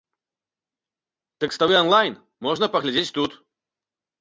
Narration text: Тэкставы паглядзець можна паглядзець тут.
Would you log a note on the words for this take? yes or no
yes